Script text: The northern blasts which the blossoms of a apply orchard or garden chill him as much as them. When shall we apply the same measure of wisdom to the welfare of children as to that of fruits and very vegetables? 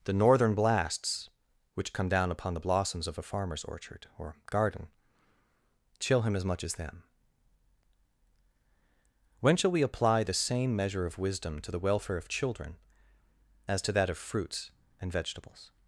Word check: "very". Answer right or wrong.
wrong